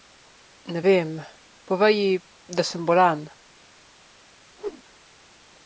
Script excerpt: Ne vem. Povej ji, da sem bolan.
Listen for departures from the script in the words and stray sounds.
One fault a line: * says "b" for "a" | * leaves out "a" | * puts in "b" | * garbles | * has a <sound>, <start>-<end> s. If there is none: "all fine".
* has a whoosh, 4.6-4.8 s